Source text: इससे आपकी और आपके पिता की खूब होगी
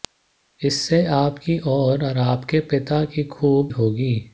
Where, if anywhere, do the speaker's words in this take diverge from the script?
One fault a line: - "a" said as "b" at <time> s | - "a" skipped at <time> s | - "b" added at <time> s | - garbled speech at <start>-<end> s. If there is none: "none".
none